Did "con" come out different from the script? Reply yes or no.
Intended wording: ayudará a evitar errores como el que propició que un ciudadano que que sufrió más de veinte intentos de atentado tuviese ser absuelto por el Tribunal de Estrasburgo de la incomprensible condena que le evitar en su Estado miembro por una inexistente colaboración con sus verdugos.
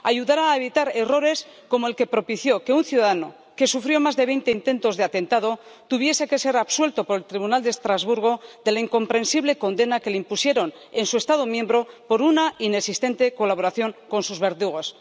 no